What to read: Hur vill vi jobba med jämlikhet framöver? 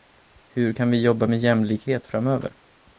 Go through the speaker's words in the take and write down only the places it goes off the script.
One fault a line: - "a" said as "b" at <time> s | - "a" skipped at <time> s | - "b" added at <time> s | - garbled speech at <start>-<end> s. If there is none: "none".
- "vill" said as "kan" at 0.7 s